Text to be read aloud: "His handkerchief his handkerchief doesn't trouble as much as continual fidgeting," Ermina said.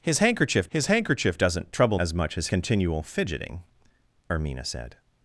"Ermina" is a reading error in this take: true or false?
false